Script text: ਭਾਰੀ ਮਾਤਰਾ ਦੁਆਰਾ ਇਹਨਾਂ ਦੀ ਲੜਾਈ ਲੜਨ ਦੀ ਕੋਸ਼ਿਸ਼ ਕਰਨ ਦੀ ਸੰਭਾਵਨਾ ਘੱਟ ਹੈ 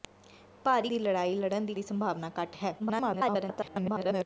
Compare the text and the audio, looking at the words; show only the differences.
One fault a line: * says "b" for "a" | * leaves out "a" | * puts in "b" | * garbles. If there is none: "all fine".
* leaves out "ਮਾਤਰਾ ਦੁਆਰਾ ਇਹਨਾਂ"
* leaves out "ਕੋਸ਼ਿਸ਼ ਕਰਨ"
* garbles